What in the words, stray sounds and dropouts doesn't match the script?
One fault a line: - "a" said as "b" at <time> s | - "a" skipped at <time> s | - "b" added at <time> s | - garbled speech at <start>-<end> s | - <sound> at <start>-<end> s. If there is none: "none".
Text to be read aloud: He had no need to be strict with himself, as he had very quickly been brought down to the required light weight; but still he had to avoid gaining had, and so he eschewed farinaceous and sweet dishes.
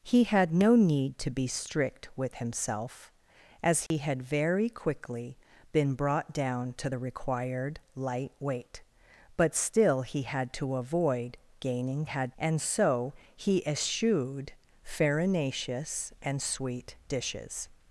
- dropout at 3.9-3.9 s